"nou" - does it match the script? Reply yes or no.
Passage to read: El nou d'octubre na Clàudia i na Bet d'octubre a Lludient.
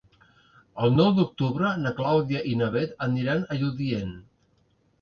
yes